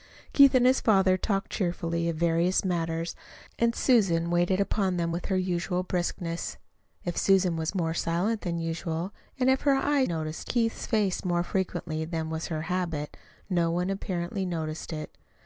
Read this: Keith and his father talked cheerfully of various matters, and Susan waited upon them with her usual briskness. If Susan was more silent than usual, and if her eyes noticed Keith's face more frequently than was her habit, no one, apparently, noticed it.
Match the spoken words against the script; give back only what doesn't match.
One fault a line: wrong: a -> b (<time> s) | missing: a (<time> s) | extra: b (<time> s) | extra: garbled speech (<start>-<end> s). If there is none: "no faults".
no faults